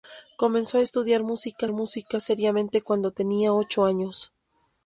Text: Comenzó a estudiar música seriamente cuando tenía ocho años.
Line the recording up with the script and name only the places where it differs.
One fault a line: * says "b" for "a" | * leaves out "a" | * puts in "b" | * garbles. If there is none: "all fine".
* puts in "música"